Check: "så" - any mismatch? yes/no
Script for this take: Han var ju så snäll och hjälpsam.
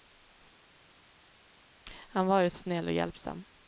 yes